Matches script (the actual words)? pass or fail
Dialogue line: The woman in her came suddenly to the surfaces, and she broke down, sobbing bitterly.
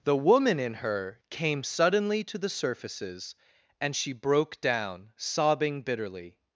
pass